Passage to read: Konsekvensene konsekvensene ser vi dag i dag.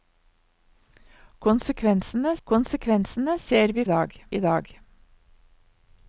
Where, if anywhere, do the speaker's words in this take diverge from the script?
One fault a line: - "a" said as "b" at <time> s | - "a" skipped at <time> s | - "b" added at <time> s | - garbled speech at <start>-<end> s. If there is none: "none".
none